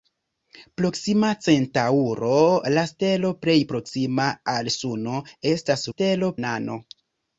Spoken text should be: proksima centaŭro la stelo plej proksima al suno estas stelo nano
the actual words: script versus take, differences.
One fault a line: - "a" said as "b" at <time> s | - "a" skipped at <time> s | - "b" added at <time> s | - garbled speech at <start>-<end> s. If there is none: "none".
none